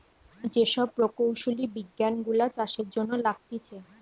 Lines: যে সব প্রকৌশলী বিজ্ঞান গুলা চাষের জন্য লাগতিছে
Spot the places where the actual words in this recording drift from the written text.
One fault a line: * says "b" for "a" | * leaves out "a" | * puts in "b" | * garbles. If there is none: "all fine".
all fine